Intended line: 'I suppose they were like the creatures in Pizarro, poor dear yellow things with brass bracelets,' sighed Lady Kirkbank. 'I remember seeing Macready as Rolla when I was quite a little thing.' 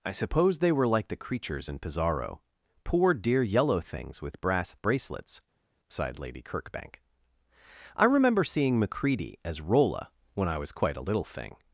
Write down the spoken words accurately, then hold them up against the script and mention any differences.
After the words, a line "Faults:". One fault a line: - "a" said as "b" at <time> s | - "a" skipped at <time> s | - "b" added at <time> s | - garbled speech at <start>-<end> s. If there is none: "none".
'I suppose they were like the creatures in Pizarro, poor dear yellow things with brass bracelets,' sighed Lady Kirkbank. 'I remember seeing Macready as Rolla when I was quite a little thing.'
Faults:
none